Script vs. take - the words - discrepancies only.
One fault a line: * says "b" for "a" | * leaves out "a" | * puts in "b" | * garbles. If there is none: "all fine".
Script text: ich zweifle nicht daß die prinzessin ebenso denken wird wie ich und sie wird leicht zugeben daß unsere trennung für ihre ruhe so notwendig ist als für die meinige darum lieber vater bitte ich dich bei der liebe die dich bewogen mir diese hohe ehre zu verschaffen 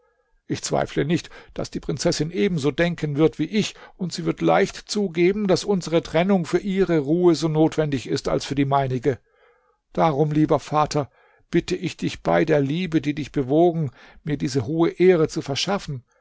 all fine